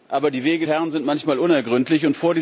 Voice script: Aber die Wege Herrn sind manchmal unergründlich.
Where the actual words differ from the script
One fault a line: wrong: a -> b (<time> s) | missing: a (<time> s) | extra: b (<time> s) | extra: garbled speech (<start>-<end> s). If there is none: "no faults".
no faults